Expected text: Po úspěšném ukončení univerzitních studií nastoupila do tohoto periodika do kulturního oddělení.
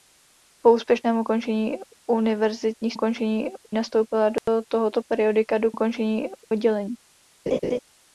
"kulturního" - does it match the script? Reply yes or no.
no